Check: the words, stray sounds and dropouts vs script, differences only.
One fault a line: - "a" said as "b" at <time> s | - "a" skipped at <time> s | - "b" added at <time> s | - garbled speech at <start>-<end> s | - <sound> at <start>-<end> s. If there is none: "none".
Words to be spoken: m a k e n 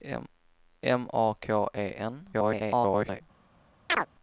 - garbled speech at 2.3-3.2 s
- chirp at 3.9-4.1 s